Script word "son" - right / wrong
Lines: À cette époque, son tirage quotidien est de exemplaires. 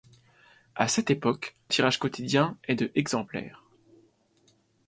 wrong